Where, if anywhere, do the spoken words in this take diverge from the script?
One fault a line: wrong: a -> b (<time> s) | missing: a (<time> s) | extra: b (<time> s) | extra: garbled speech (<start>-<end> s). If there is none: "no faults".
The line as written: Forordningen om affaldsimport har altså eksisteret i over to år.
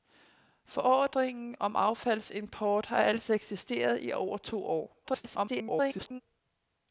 extra: garbled speech (5.0-6.2 s)